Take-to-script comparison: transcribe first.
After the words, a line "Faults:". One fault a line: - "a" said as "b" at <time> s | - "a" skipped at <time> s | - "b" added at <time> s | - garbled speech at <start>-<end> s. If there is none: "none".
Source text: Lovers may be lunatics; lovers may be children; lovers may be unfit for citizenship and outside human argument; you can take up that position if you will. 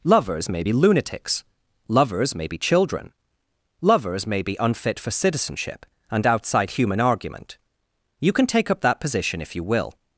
Lovers may be lunatics; lovers may be children; lovers may be unfit for citizenship and outside human argument; you can take up that position if you will.
Faults:
none